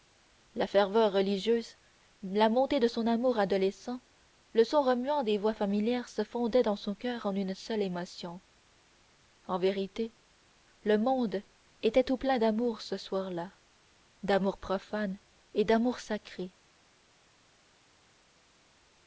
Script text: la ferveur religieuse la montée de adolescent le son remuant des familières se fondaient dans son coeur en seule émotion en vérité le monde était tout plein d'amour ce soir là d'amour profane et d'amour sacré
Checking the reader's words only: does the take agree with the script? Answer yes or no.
no